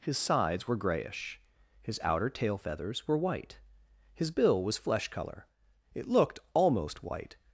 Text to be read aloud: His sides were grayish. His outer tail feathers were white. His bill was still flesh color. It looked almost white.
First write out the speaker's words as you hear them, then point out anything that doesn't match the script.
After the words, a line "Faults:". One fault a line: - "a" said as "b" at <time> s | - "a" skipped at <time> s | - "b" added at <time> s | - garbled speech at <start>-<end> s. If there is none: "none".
His sides were grayish. His outer tail feathers were white. His bill was flesh color. It looked almost white.
Faults:
- "still" skipped at 4.8 s